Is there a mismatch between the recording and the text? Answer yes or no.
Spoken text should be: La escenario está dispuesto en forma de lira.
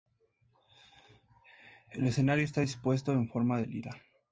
yes